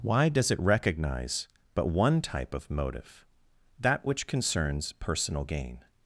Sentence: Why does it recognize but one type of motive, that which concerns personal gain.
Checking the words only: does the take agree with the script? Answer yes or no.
yes